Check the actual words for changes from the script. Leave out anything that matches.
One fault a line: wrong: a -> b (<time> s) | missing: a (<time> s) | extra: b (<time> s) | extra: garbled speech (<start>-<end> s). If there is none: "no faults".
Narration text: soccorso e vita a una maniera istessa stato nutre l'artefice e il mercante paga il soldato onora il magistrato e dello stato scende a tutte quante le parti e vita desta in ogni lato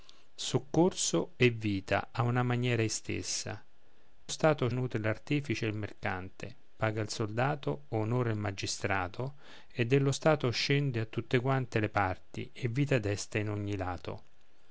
no faults